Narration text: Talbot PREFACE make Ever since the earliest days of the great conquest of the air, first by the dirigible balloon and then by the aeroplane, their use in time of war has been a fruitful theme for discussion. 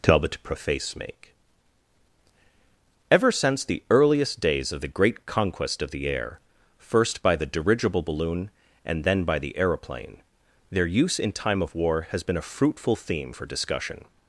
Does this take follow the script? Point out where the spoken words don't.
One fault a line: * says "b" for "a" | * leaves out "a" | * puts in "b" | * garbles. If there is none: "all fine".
all fine